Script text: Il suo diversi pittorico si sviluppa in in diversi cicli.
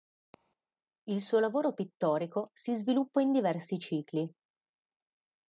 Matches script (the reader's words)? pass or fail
fail